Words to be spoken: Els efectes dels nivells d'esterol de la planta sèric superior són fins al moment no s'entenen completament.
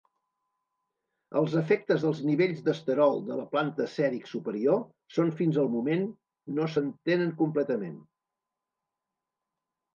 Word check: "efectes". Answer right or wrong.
right